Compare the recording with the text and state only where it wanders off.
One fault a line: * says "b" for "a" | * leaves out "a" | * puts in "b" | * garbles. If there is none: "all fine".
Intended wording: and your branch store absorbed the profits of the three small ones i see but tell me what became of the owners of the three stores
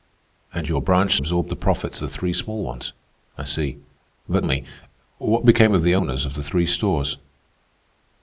* leaves out "store"
* leaves out "of"
* leaves out "tell"